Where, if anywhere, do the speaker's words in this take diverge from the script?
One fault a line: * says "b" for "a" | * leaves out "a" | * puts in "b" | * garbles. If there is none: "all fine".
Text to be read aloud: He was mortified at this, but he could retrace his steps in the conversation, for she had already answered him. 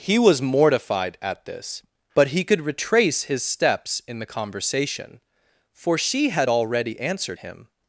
all fine